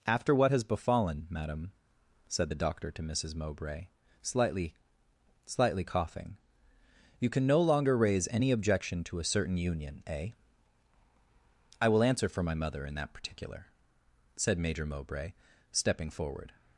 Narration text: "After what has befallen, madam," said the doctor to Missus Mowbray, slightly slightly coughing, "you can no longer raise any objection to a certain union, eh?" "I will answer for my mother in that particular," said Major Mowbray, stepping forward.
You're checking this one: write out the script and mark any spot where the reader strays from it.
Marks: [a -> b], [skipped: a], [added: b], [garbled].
"After what has befallen, madam," said the doctor to Missus Mowbray, slightly slightly coughing, "you can no longer raise any objection to a certain union, eh?" "I will answer for my mother in that particular," said Major Mowbray, stepping forward.